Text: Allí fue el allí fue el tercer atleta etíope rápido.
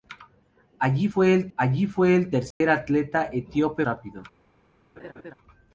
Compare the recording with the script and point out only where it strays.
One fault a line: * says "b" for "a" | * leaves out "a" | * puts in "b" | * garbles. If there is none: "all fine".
all fine